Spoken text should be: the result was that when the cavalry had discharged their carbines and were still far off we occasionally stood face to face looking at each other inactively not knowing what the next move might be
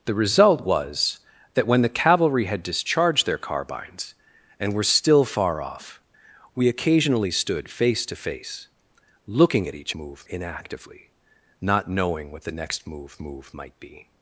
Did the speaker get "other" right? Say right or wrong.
wrong